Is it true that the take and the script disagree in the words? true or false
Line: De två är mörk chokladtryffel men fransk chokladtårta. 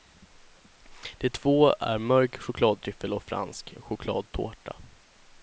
true